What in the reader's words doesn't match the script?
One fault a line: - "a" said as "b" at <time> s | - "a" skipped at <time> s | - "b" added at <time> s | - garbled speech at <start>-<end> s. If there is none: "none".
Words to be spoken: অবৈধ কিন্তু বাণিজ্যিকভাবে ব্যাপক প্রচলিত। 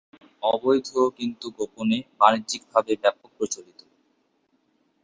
- "গোপনে" added at 1.6 s